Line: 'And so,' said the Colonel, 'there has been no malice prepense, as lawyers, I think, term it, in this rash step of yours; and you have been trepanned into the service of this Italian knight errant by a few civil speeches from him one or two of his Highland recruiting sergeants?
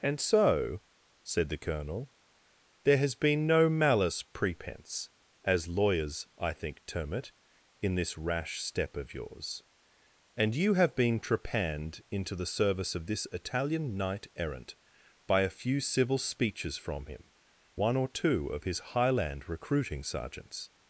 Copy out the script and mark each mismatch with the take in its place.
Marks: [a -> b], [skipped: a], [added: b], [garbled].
'And so,' said the Colonel, 'there has been no malice prepense, as lawyers, I think, term it, in this rash step of yours; and you have been trepanned into the service of this Italian knight errant by a few civil speeches from him one or two of his Highland recruiting sergeants?